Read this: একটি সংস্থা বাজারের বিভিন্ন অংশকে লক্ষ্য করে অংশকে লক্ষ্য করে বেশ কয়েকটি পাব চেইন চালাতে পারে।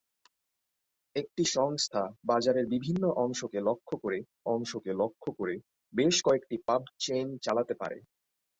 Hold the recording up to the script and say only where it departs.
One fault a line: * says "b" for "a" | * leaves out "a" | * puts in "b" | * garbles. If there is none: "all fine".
all fine